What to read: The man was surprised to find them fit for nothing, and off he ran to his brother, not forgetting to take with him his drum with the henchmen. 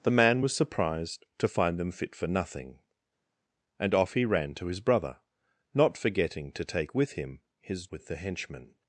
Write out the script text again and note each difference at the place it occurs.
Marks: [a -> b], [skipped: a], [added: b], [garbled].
The man was surprised to find them fit for nothing, and off he ran to his brother, not forgetting to take with him his [skipped: drum] with the henchmen.